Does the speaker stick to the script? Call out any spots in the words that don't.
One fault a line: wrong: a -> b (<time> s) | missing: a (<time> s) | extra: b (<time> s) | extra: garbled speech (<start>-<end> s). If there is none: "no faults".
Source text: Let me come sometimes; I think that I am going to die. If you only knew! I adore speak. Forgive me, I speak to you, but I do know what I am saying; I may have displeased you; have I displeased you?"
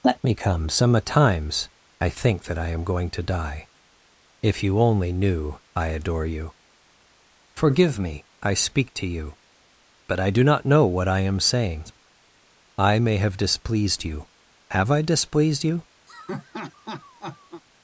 wrong: speak -> you (6.2 s)
extra: not (10.4 s)